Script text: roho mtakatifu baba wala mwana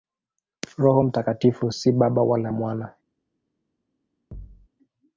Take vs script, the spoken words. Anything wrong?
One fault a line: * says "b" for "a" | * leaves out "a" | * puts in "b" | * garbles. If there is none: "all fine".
* puts in "si"